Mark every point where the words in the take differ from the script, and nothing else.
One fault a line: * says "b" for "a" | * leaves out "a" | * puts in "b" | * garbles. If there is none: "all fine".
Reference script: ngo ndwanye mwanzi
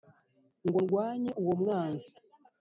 * puts in "uwo"